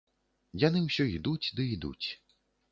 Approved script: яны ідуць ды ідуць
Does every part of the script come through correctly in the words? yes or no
no